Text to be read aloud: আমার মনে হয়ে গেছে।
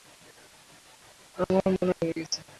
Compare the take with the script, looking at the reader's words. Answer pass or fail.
pass